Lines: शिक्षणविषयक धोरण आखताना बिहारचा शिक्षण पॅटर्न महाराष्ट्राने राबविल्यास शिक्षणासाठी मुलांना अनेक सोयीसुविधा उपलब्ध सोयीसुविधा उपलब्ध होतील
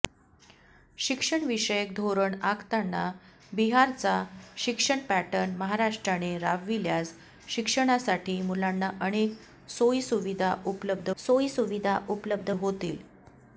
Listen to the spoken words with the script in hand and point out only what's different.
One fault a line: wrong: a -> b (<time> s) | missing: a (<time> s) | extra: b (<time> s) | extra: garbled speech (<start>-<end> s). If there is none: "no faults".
no faults